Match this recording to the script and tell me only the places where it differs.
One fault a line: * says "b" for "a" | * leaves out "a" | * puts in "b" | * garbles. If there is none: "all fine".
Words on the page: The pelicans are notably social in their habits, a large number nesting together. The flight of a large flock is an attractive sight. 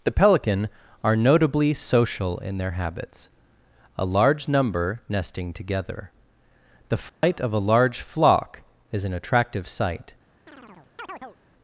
* says "pelican" for "pelicans"